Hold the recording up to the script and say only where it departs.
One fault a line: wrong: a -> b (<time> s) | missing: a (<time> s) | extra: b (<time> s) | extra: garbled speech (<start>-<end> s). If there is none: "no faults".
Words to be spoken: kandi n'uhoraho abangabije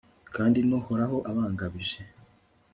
no faults